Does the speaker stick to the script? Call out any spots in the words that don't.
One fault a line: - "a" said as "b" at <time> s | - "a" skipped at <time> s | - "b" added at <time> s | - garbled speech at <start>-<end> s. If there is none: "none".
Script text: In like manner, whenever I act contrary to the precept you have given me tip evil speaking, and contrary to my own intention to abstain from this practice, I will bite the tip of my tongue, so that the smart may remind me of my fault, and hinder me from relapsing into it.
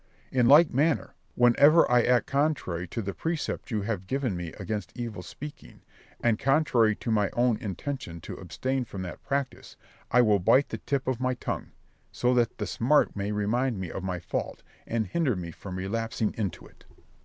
- "tip" said as "against" at 4.5 s
- "this" said as "that" at 9.0 s